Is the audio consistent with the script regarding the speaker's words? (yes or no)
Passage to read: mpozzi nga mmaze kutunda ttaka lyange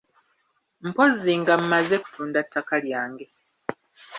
yes